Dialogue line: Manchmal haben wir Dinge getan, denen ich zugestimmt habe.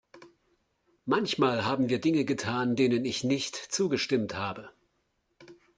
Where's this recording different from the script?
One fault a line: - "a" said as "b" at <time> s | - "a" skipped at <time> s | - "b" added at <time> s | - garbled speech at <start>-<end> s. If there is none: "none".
- "nicht" added at 3.2 s